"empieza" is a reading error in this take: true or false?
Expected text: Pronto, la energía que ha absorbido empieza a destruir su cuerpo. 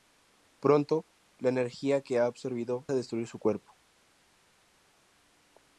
true